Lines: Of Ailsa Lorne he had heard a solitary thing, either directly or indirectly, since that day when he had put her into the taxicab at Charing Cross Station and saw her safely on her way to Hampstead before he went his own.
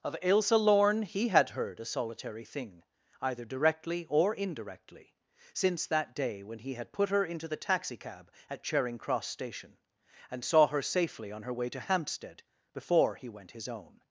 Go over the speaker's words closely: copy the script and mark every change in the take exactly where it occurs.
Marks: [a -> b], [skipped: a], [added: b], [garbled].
Of Ailsa Lorne he had heard a solitary thing, either directly or indirectly, since that day when he had put her into the taxicab at Charing Cross Station and saw her safely on her way to Hampstead before he went his own.